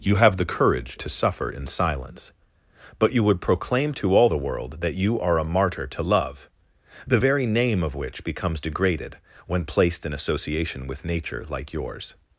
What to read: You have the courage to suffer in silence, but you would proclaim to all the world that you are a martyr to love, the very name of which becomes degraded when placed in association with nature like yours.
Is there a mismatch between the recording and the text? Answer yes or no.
no